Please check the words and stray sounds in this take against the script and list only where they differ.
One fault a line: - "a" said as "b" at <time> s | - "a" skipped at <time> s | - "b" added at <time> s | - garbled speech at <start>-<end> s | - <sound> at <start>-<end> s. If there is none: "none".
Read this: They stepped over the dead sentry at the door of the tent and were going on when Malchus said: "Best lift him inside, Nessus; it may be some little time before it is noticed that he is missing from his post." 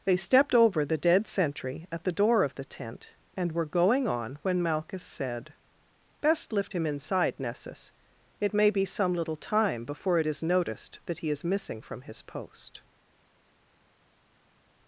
none